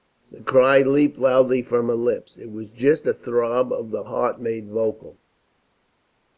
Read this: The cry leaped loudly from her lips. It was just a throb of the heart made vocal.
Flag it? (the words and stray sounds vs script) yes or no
no